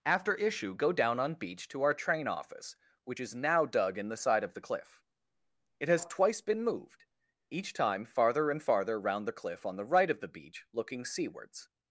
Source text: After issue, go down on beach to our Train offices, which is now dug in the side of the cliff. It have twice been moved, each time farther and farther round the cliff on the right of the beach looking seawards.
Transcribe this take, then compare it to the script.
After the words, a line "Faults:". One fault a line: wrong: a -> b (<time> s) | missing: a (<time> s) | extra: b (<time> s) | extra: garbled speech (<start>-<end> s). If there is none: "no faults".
After issue, go down on beach to our Train office, which is now dug in the side of the cliff. It has twice been moved, each time farther and farther round the cliff on the right of the beach looking seawards.
Faults:
wrong: offices -> office (2.3 s)
wrong: have -> has (5.9 s)